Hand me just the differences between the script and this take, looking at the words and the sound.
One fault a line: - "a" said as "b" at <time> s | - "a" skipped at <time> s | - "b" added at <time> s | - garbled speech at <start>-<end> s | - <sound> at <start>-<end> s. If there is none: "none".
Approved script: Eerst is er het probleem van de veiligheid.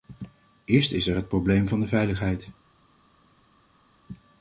none